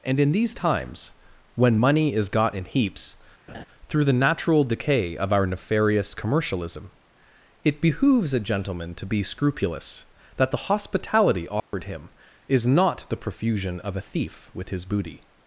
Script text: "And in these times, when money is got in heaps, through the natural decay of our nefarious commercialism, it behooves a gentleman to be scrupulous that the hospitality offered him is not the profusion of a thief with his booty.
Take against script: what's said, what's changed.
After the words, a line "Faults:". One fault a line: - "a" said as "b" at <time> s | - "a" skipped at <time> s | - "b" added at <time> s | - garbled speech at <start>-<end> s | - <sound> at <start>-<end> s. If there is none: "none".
"And in these times, when money is got in heaps, through the natural decay of our nefarious commercialism, it behooves a gentleman to be scrupulous that the hospitality offered him is not the profusion of a thief with his booty.
Faults:
- laugh at 3.5-3.7 s
- dropout at 11.6-11.7 s